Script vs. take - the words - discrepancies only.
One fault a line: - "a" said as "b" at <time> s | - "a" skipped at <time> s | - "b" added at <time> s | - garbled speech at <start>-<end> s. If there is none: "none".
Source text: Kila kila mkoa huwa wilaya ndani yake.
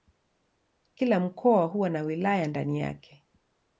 - "kila" skipped at 1.2 s
- "na" added at 1.9 s